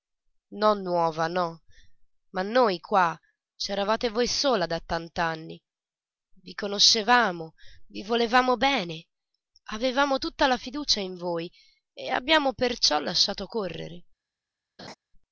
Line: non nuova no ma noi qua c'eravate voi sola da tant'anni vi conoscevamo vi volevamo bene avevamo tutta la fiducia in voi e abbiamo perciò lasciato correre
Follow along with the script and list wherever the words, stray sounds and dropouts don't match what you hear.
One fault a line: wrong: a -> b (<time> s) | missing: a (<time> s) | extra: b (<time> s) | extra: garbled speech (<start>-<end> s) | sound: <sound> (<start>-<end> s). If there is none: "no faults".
sound: laugh (14.8-14.9 s)